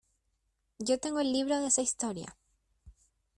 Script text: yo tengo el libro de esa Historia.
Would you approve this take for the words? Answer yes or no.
yes